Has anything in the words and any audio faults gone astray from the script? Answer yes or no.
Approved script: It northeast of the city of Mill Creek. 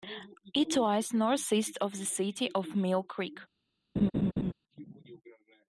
yes